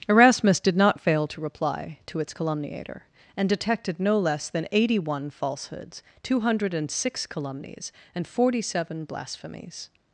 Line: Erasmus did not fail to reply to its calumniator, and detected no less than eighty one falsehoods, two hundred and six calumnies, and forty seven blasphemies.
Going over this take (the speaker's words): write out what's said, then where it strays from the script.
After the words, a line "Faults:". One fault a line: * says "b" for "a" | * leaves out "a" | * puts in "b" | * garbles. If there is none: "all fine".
Erasmus did not fail to reply to its calumniator, and detected no less than eighty one falsehoods, two hundred and six calumnies, and forty seven blasphemies.
Faults:
all fine